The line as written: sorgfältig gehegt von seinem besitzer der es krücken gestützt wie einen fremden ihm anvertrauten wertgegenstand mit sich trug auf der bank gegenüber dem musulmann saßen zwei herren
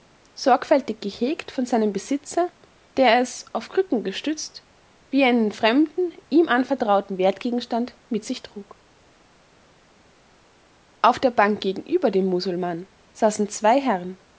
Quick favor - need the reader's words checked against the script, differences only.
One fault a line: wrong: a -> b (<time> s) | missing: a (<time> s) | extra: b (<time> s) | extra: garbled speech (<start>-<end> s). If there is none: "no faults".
extra: auf (3.5 s)